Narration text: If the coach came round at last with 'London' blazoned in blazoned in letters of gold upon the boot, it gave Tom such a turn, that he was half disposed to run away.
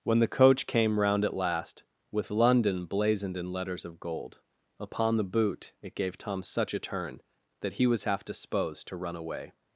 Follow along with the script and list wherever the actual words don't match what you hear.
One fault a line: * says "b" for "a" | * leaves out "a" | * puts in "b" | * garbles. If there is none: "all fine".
* says "When" for "If"
* leaves out "blazoned in"